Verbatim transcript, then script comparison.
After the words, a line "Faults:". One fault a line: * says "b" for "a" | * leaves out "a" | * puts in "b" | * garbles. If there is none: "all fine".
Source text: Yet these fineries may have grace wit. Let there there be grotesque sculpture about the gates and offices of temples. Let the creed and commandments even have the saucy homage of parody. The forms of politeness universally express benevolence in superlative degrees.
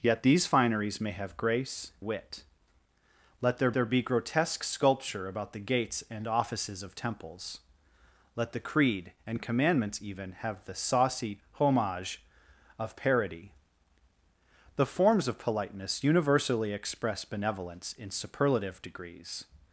Yet these fineries may have grace wit. Let there there be grotesque sculpture about the gates and offices of temples. Let the creed and commandments even have the saucy homage of parody. The forms of politeness universally express benevolence in superlative degrees.
Faults:
all fine